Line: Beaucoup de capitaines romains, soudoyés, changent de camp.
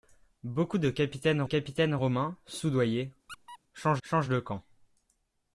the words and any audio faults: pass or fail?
fail